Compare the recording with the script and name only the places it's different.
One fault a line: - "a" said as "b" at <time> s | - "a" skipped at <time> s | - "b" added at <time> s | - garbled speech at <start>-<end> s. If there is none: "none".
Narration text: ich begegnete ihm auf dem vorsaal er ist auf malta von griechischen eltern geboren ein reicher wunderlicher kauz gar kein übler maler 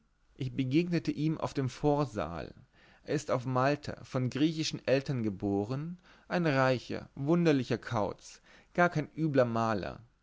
none